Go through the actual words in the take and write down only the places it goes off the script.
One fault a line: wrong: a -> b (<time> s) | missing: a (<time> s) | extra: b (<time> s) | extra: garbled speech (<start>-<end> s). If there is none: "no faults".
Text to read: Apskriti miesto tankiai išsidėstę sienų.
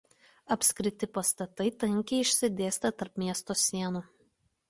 wrong: miesto -> pastatai (1.2 s)
extra: tarp miesto (3.0 s)